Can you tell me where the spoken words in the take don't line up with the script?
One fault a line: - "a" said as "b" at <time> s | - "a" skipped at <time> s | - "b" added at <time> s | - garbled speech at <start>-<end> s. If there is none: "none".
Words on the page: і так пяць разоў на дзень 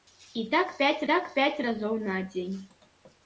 - "так пяць" added at 1.1 s